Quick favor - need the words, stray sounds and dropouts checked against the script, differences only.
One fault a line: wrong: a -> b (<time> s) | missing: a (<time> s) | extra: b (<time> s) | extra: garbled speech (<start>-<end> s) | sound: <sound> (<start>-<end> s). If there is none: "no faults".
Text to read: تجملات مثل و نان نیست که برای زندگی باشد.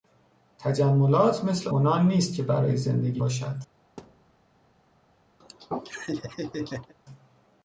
sound: thud (4.0-4.3 s)
sound: laugh (5.4-6.9 s)